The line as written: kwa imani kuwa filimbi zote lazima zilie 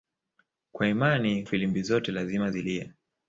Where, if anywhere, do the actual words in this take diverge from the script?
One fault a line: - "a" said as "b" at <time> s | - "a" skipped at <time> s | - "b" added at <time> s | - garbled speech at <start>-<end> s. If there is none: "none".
- "kuwa" skipped at 1.4 s